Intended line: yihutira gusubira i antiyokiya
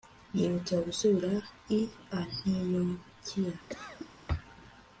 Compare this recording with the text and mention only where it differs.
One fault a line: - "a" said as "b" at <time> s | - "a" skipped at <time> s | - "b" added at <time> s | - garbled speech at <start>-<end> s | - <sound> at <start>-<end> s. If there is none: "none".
- cough at 3.7-4.1 s